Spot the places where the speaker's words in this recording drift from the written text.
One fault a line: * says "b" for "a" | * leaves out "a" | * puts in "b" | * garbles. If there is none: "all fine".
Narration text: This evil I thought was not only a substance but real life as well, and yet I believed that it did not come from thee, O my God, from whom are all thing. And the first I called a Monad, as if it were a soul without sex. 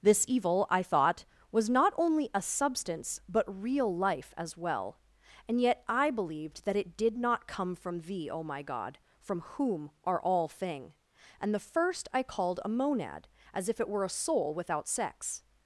all fine